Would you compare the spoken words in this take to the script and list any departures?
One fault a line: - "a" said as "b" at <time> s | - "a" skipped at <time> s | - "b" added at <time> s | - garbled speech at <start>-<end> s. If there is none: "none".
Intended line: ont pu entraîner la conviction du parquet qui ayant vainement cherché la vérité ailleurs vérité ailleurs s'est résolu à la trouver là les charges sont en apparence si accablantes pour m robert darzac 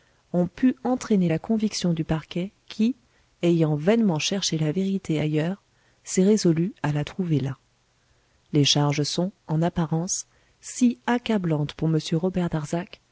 - "vérité ailleurs" skipped at 5.6 s